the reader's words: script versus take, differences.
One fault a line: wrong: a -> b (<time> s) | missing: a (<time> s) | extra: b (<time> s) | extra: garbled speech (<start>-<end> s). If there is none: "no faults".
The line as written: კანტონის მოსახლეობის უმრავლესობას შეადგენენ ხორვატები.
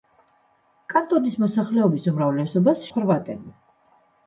missing: შეადგენენ (2.9 s)